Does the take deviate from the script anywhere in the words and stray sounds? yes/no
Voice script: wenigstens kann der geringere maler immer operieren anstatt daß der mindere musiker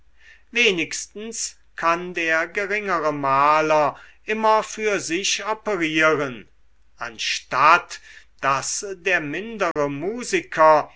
yes